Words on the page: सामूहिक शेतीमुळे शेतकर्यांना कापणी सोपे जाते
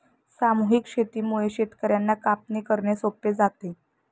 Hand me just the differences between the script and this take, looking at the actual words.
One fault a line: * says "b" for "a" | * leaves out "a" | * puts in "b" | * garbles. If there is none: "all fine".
* puts in "करणे"